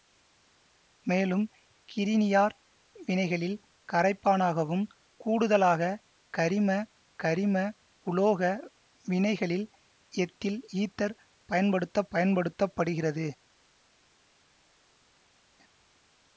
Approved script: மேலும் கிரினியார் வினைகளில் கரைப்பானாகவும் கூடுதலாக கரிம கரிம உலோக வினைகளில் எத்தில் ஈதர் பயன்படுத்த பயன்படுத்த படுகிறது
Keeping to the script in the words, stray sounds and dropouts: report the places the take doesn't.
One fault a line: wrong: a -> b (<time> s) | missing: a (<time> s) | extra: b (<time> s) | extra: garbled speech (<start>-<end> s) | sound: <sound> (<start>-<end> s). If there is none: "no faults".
no faults